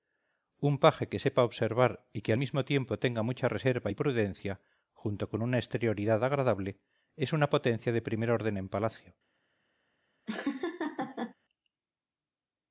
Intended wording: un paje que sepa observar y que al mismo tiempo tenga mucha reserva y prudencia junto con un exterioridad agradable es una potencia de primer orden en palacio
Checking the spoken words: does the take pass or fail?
fail